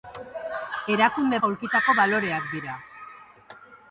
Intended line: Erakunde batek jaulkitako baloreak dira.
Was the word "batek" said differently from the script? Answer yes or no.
yes